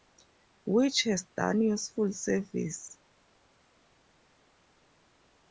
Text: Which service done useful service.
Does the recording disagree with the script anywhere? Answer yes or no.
yes